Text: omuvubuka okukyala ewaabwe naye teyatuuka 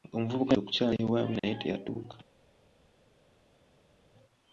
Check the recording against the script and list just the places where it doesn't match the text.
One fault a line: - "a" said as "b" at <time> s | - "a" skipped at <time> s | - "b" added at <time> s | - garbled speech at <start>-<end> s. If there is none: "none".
none